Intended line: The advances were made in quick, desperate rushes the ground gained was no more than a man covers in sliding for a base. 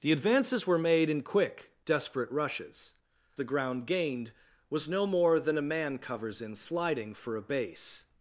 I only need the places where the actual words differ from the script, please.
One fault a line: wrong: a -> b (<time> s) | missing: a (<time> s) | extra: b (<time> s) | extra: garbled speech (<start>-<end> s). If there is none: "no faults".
no faults